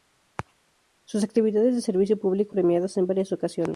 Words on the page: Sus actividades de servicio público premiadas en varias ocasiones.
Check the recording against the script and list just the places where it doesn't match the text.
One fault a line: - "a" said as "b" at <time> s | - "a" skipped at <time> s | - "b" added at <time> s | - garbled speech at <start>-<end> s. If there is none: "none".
none